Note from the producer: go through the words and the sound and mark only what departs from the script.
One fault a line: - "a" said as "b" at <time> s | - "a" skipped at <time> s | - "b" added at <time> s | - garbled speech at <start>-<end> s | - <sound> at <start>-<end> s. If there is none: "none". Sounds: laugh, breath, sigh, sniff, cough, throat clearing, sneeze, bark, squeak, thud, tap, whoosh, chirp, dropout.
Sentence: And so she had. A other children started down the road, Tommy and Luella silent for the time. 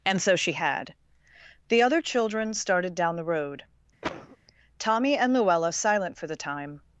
- "A" said as "The" at 1.7 s
- cough at 4.0-4.4 s